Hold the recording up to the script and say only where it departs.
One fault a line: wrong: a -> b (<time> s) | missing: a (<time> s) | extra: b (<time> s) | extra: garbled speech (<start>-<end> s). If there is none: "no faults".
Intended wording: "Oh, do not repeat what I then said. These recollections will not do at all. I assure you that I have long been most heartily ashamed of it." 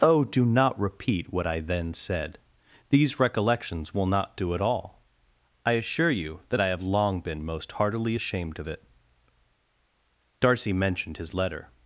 extra: Darcy mentioned his letter (10.4 s)